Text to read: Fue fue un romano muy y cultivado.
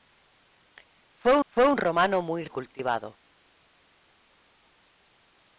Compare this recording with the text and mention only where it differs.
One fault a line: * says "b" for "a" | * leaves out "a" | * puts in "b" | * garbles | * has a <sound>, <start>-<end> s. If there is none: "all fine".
all fine